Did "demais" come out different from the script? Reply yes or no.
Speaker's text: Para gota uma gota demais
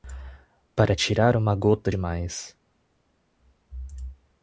no